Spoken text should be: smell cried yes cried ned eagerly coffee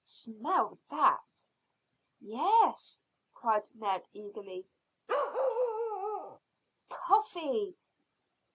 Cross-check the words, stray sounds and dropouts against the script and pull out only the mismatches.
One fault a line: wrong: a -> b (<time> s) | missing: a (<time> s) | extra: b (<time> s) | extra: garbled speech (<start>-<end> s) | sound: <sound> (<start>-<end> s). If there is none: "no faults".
wrong: cried -> that (0.9 s)
sound: bark (5.1-6.4 s)